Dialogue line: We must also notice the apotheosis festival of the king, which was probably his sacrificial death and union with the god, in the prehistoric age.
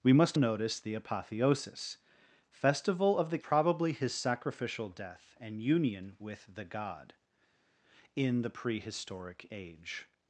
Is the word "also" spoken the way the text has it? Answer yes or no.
no